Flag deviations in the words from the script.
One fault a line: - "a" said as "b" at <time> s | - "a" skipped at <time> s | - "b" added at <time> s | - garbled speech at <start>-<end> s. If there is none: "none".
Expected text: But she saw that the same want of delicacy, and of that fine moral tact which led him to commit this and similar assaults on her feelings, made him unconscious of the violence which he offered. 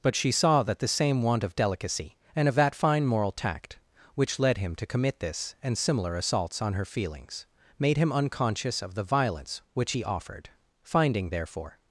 - "Finding therefore" added at 10.8 s